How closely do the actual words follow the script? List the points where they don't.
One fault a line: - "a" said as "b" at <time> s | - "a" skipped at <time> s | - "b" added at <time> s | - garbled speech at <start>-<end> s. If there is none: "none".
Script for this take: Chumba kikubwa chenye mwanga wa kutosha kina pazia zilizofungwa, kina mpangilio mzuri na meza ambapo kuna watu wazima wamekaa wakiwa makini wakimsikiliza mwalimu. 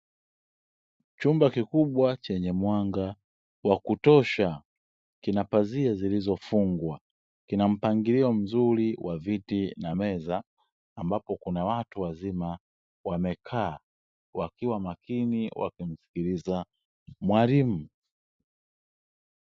- "wa viti" added at 9.0 s